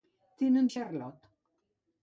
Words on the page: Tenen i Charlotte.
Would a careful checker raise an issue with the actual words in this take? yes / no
no